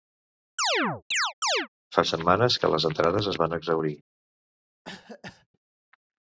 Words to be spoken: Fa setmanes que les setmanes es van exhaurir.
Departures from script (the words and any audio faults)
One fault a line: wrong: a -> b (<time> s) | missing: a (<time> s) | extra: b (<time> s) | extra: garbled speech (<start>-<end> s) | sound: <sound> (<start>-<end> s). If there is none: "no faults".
sound: chirp (0.6-1.7 s)
wrong: setmanes -> entrades (2.9 s)
sound: cough (4.8-5.5 s)